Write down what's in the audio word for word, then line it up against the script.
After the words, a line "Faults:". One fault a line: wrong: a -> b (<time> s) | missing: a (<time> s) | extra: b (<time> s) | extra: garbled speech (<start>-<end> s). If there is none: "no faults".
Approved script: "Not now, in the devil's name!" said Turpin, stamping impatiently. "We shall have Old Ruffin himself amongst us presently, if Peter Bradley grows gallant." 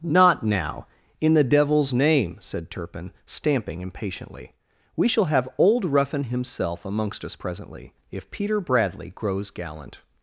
"Not now, in the devil's name!" said Turpin, stamping impatiently. "We shall have Old Ruffin himself amongst us presently, if Peter Bradley grows gallant."
Faults:
no faults